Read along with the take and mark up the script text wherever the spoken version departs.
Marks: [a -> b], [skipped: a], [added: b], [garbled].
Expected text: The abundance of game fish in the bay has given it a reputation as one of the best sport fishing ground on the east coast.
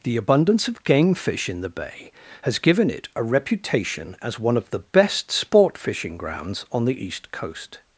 The abundance of game fish in the bay has given it a reputation as one of the best sport fishing [ground -> grounds] on the east coast.